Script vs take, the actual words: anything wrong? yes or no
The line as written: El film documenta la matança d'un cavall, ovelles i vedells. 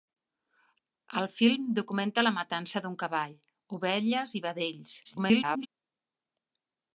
yes